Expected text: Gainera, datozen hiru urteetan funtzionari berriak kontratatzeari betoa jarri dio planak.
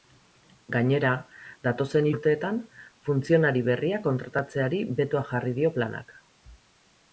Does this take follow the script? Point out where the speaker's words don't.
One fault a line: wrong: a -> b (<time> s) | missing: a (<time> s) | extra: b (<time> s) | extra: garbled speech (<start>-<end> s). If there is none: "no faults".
missing: hiru (2.1 s)